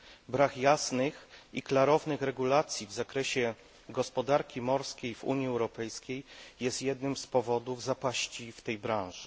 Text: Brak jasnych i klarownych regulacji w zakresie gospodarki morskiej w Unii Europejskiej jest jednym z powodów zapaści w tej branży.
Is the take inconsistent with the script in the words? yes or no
no